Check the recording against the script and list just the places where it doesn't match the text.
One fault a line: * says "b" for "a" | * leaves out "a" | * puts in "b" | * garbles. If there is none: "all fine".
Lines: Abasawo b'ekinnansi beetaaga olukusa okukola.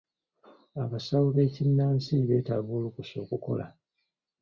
all fine